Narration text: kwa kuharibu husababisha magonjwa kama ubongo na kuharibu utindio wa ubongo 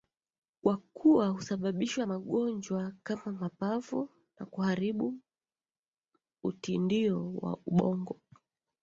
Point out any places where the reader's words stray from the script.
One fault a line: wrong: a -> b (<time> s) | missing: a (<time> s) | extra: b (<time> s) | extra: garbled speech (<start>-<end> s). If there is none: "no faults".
wrong: kuharibu -> kuwa (0.8 s)
wrong: ubongo -> mapafu (3.3 s)